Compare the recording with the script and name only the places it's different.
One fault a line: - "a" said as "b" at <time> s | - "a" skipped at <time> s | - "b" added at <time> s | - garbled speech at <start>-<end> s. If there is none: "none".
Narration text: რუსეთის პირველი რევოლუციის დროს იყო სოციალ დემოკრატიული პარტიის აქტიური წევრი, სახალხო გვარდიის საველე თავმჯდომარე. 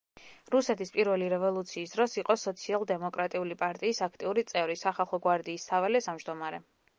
none